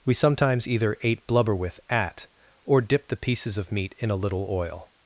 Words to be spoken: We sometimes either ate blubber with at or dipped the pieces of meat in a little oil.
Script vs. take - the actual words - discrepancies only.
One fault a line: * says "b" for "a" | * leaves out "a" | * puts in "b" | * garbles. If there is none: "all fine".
all fine